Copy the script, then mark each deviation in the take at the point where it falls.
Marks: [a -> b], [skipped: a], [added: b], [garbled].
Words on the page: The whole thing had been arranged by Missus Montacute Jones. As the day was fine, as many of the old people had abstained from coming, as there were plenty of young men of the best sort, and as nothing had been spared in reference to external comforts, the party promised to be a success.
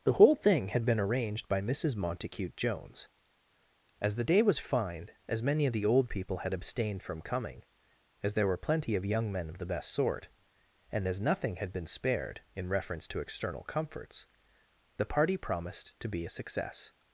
The whole thing had been arranged by Missus Montacute Jones. As the day was fine, as many of the old people had abstained from coming, as there were plenty of young men of the best sort, and as nothing had been spared in reference to external comforts, the party promised to be a success.